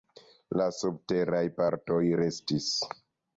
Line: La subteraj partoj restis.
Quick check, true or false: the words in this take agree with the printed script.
true